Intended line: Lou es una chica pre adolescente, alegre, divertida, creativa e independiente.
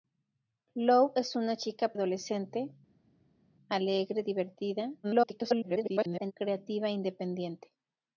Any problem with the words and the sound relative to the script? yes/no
yes